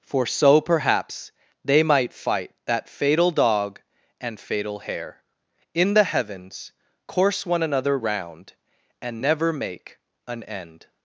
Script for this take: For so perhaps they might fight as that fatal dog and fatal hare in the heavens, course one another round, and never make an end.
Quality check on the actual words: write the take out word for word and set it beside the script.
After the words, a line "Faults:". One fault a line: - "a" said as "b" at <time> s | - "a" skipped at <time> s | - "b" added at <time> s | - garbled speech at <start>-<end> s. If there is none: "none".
For so perhaps they might fight that fatal dog and fatal hare in the heavens, course one another round, and never make an end.
Faults:
- "as" skipped at 2.5 s